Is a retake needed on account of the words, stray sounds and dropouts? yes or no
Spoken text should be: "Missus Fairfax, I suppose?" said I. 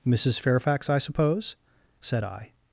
no